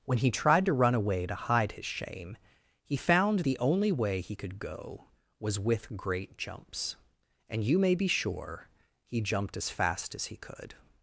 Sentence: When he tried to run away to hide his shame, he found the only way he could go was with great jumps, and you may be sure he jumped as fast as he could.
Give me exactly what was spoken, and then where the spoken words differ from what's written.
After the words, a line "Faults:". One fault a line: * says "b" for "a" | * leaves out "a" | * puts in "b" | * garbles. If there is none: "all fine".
When he tried to run away to hide his shame, he found the only way he could go was with great jumps, and you may be sure he jumped as fast as he could.
Faults:
all fine